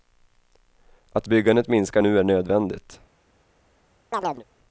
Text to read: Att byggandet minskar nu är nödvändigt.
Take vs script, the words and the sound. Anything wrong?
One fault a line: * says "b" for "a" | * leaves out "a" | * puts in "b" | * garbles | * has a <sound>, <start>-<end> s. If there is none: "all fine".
* has a chirp, 4.1-4.4 s